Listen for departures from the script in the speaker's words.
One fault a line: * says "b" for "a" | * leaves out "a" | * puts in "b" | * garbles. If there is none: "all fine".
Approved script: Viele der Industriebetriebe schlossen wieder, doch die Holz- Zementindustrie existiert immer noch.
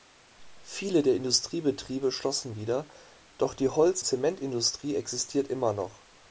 all fine